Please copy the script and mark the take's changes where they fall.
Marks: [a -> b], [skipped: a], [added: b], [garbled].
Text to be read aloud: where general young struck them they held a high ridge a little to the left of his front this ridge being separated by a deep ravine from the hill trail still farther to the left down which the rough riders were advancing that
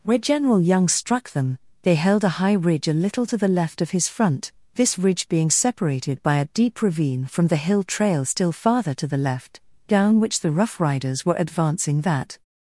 where general young struck them they held a high ridge a little to the left of his front this ridge being separated by a deep ravine from the hill trail still farther to the left down which the rough riders were advancing that